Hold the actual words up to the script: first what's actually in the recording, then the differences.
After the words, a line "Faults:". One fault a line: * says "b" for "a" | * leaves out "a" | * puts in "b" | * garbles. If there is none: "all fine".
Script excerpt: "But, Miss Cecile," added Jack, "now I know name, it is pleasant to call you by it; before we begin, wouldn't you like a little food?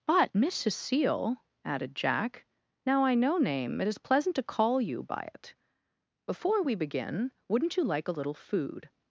"But, Miss Cecile," added Jack, "now I know name, it is pleasant to call you by it; before we begin, wouldn't you like a little food?
Faults:
all fine